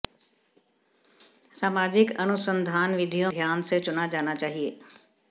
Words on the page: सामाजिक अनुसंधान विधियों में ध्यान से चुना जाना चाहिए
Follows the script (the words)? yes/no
no